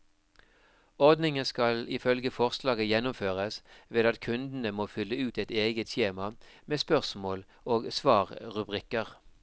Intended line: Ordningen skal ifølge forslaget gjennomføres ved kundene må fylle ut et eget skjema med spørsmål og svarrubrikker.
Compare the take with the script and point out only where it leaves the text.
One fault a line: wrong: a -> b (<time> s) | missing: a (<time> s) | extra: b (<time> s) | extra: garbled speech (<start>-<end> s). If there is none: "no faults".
extra: at (4.0 s)